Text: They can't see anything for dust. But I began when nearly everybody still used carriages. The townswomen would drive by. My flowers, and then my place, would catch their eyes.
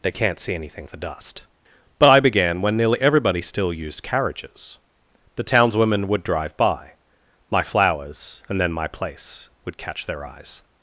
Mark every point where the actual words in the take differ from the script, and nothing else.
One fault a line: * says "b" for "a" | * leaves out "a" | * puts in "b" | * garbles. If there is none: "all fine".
all fine